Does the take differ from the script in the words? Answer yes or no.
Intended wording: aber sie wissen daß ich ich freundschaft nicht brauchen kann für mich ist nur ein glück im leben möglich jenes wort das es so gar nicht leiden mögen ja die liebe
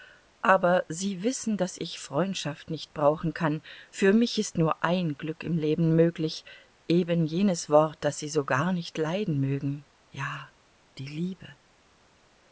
yes